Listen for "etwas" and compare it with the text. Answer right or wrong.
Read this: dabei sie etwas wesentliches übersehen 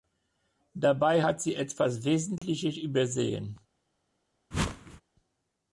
right